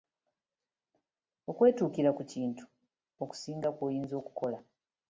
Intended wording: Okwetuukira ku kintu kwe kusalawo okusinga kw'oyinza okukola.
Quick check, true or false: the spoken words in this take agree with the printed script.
false